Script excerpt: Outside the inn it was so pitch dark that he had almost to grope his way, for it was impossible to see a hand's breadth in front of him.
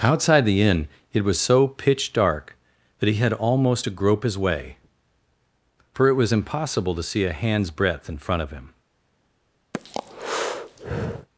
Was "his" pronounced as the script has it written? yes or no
yes